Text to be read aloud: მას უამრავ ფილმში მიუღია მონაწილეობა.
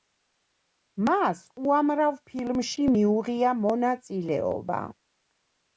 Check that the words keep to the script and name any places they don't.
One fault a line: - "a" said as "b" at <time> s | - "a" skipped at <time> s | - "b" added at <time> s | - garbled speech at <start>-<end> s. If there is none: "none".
none